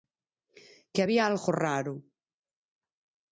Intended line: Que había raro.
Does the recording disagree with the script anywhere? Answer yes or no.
yes